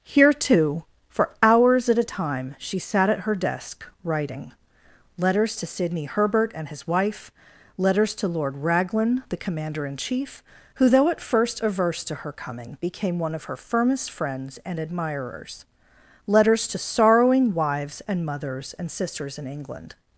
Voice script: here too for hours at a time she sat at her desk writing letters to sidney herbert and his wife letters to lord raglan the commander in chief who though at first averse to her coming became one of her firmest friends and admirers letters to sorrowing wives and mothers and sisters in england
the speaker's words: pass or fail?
pass